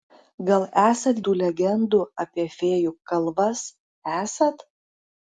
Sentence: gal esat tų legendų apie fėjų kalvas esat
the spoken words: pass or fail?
pass